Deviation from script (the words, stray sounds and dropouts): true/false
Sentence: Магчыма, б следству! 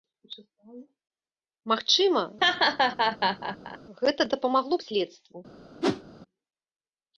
true